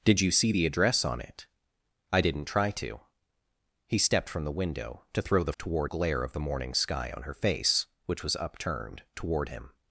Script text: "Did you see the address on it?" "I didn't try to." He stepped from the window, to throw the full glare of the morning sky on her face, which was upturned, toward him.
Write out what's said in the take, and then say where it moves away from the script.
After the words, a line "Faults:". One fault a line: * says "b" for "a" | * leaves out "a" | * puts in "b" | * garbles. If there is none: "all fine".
"Did you see the address on it?" "I didn't try to." He stepped from the window, to throw the toward glare of the morning sky on her face, which was upturned, toward him.
Faults:
* says "toward" for "full"